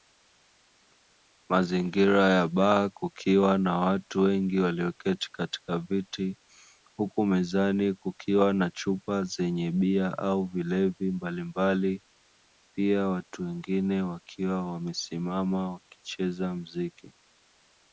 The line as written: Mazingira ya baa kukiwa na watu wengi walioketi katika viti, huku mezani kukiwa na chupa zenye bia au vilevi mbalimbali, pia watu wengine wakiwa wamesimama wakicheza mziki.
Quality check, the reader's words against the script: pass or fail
pass